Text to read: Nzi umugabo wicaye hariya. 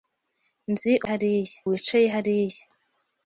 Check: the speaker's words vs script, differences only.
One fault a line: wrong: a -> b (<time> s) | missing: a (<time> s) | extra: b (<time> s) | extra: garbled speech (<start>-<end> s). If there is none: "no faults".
wrong: umugabo -> hariya (1.1 s)